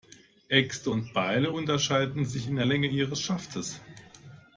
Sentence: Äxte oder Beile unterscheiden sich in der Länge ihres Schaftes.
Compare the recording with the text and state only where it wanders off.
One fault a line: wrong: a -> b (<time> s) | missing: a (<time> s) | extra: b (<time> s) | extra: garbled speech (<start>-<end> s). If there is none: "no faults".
wrong: oder -> und (0.9 s)